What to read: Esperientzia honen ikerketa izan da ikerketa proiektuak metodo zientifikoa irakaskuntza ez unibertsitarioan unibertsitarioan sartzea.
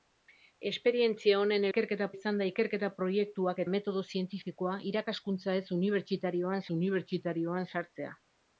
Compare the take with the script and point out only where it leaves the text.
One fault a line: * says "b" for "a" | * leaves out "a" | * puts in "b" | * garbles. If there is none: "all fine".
all fine